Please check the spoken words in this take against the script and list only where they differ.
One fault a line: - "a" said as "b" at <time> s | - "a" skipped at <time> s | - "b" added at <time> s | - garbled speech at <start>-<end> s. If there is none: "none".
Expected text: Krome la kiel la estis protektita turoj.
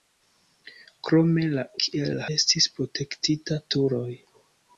none